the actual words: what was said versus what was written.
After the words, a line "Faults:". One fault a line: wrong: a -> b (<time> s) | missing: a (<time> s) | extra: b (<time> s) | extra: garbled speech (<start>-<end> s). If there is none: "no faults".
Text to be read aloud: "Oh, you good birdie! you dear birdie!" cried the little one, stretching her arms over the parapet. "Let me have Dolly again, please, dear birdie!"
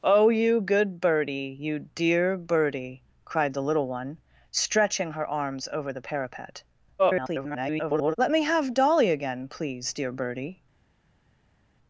"Oh, you good birdie! you dear birdie!" cried the little one, stretching her arms over the parapet. [garbled] "Let me have Dolly again, please, dear birdie!"
Faults:
extra: garbled speech (7.0-8.2 s)